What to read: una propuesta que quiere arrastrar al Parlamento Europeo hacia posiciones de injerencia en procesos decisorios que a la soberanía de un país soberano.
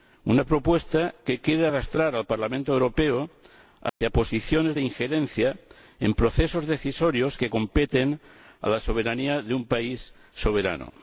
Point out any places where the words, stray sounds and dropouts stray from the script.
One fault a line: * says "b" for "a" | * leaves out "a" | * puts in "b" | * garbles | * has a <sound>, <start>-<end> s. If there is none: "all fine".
* has a dropout, 3.9-4.0 s
* puts in "competen"